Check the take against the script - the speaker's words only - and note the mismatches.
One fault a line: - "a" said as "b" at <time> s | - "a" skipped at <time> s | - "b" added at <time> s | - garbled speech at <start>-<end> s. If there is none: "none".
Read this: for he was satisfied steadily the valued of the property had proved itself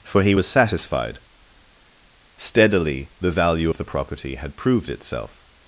- "valued" said as "value" at 3.3 s